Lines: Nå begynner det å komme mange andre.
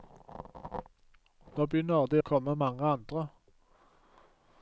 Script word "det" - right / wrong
right